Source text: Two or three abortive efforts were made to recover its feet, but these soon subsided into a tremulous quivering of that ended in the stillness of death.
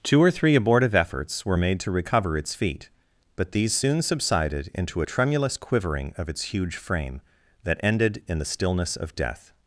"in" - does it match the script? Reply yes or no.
yes